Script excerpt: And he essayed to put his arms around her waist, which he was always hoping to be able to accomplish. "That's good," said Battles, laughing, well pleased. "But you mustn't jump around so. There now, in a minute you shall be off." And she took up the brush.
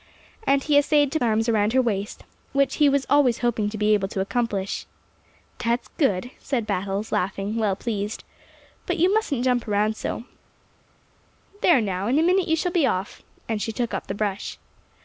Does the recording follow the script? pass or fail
fail